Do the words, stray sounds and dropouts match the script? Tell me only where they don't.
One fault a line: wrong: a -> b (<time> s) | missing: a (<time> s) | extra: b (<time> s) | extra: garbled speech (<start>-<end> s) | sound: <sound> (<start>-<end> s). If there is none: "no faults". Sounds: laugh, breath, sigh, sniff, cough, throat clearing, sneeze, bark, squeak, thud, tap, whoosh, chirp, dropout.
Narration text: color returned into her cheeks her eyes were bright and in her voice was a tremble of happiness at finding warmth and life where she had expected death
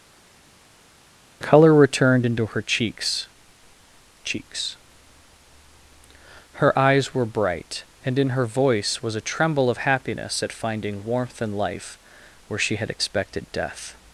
extra: cheeks (4.2 s)